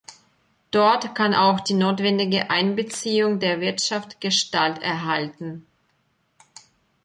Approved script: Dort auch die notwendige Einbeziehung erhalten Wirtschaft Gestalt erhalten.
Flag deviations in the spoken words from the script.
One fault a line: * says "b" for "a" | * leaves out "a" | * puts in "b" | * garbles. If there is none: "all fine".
* puts in "kann"
* says "der" for "erhalten"